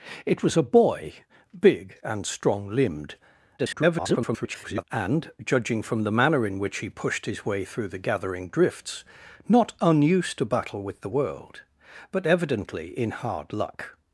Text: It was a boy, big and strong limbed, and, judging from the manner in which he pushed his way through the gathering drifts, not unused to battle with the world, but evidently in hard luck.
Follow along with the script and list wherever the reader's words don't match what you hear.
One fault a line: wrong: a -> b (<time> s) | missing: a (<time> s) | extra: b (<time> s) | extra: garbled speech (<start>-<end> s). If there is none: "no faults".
extra: garbled speech (3.6-4.8 s)